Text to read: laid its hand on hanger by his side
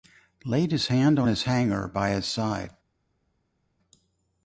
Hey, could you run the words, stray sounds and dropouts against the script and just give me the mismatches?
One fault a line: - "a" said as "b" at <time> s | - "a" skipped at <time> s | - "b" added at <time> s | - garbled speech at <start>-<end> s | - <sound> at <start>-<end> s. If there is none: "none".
- "its" said as "his" at 0.7 s
- "his" added at 1.3 s